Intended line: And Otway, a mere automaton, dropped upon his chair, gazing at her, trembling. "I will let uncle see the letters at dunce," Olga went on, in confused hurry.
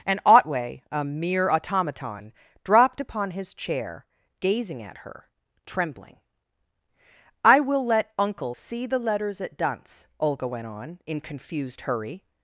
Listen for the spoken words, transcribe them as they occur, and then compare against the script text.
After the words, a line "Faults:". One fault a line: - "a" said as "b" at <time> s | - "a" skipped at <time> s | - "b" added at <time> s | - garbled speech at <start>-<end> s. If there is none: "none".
And Otway, a mere automaton, dropped upon his chair, gazing at her, trembling. "I will let uncle see the letters at dunce," Olga went on, in confused hurry.
Faults:
none